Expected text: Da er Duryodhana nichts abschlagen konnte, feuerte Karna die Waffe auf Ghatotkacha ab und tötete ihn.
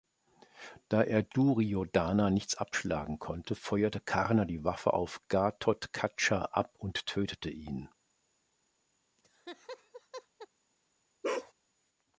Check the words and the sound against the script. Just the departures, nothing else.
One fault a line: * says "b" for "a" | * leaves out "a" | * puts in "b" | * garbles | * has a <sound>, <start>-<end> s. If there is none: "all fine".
* has a laugh, 9.2-10.5 s
* has a bark, 11.2-11.5 s